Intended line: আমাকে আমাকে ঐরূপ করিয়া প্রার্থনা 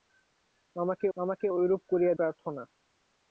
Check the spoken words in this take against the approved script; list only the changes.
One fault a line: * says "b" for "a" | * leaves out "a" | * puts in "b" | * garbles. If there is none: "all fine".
all fine